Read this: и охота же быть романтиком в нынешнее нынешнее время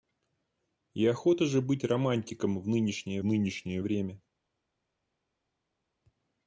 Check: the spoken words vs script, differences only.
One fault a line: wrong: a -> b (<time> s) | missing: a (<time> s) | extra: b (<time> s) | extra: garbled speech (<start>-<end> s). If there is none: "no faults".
no faults